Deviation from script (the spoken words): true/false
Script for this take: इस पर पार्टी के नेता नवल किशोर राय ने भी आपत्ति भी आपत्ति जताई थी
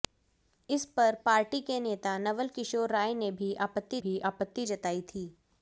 false